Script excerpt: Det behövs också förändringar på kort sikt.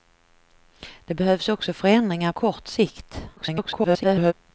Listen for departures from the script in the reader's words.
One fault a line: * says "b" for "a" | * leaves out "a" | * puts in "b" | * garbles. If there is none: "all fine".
* leaves out "på"
* garbles